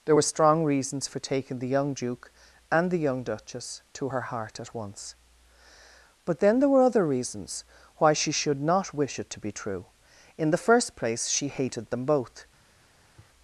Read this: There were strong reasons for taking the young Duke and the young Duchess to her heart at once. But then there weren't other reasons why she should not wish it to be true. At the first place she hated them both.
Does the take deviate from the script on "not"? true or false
false